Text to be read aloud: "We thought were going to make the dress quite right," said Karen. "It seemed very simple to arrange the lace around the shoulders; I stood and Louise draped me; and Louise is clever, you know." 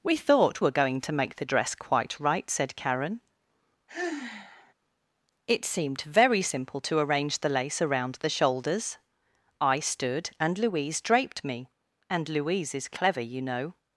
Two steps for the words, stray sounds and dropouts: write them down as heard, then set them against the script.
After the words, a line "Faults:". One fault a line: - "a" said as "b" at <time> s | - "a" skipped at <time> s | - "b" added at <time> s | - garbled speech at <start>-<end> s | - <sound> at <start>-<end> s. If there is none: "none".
"We thought were going to make the dress quite right," said Karen. "It seemed very simple to arrange the lace around the shoulders; I stood and Louise draped me; and Louise is clever, you know."
Faults:
- sigh at 3.9-4.7 s